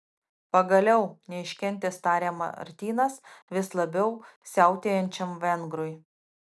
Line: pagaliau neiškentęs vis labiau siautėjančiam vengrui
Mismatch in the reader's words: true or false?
true